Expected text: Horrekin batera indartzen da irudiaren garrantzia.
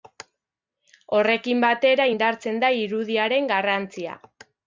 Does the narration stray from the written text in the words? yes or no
no